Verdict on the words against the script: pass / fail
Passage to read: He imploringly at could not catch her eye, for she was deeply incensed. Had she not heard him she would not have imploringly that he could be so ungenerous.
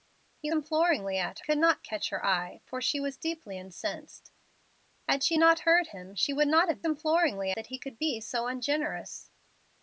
pass